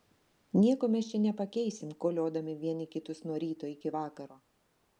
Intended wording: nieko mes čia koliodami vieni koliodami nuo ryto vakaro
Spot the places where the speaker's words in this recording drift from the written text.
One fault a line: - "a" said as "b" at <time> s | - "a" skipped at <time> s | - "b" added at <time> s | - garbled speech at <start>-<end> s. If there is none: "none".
- "nepakeisim" added at 1.2 s
- "koliodami" said as "kitus" at 3.0 s
- "iki" added at 3.8 s